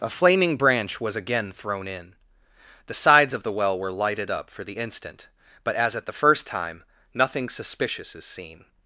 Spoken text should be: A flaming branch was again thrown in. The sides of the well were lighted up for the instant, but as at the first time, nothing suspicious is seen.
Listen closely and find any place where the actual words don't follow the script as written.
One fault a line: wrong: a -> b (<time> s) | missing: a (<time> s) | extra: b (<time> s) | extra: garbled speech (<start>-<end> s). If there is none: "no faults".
no faults